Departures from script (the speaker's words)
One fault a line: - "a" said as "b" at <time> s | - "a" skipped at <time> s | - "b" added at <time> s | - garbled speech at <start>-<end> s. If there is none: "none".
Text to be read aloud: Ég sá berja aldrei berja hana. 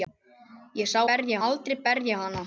none